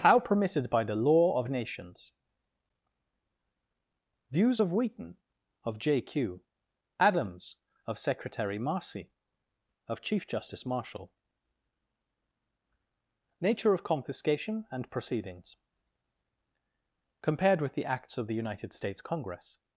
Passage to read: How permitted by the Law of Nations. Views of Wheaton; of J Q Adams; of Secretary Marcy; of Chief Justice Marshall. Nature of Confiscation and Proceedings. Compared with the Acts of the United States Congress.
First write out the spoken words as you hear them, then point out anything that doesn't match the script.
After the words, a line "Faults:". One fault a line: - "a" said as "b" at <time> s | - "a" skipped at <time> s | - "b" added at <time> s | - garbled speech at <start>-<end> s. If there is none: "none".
How permitted by the Law of Nations. Views of Wheaton; of J Q Adams; of Secretary Marcy; of Chief Justice Marshall. Nature of Confiscation and Proceedings. Compared with the Acts of the United States Congress.
Faults:
none